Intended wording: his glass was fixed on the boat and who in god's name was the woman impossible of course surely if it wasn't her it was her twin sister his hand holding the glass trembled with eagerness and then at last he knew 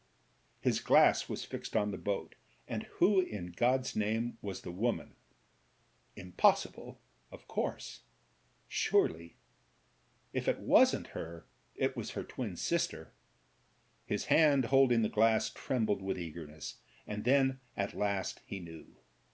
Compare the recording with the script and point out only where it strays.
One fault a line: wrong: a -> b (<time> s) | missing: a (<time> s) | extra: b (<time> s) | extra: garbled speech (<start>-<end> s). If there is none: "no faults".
no faults